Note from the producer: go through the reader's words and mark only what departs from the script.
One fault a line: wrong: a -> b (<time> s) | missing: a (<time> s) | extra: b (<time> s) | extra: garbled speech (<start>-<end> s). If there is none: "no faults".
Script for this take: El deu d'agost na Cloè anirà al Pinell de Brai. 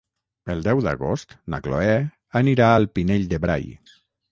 no faults